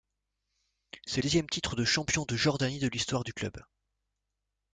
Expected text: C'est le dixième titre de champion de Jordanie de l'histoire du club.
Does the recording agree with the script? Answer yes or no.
no